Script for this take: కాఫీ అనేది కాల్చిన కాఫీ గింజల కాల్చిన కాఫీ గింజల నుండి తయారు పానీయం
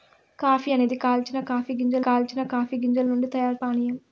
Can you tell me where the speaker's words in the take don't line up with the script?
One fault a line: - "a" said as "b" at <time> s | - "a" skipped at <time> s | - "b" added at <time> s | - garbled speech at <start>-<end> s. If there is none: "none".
none